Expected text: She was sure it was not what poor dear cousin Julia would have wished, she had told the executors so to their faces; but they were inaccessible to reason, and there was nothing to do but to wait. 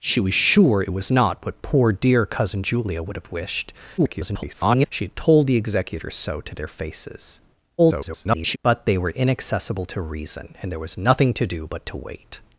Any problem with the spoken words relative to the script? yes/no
yes